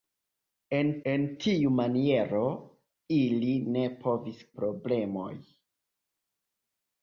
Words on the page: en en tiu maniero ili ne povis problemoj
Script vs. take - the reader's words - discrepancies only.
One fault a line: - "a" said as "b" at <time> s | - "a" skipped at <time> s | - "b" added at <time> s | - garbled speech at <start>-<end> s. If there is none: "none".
none